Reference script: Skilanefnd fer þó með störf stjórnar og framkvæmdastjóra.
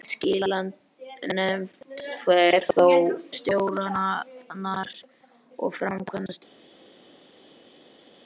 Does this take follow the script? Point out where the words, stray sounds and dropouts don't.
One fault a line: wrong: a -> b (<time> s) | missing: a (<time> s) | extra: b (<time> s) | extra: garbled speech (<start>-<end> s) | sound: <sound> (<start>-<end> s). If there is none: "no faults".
missing: með störf (2.9 s)